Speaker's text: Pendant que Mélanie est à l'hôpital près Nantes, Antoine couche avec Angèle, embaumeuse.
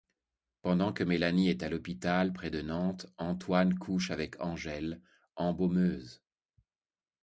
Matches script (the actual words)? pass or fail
fail